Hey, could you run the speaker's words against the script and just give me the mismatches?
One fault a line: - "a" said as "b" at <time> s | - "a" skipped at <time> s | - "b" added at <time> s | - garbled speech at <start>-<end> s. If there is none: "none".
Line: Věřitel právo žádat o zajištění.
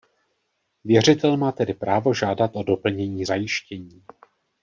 - "má tedy" added at 1.4 s
- "doplnění" added at 2.6 s